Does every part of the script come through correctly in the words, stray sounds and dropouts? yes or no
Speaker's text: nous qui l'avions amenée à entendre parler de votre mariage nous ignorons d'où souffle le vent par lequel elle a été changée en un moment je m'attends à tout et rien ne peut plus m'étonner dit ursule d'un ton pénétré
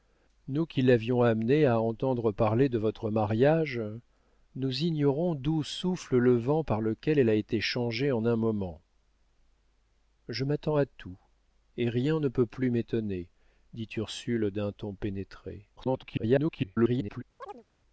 no